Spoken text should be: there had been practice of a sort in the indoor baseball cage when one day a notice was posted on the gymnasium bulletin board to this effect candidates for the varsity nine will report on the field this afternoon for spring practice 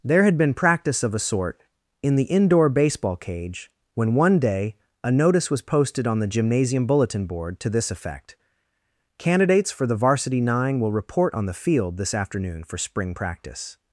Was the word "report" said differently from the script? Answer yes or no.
no